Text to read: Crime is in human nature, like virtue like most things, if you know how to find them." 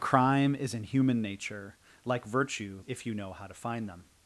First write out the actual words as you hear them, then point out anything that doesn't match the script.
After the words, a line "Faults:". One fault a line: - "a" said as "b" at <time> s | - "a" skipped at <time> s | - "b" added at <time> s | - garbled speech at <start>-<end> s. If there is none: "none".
Crime is in human nature, like virtue if you know how to find them."
Faults:
- "like most things" skipped at 2.8 s